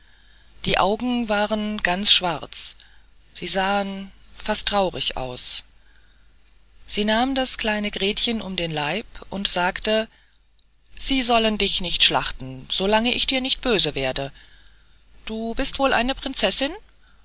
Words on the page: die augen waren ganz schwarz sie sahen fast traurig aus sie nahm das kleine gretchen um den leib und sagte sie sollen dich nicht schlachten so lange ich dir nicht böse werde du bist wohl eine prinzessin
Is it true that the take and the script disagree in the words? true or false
false